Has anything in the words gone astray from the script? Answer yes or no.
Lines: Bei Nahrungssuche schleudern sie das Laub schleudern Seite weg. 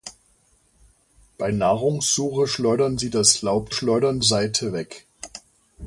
no